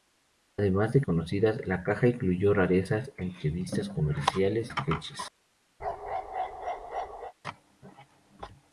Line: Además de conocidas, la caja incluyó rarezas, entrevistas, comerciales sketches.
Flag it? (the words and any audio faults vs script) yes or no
yes